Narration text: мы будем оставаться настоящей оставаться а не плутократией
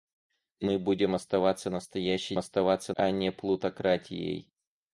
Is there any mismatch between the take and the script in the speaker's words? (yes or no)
no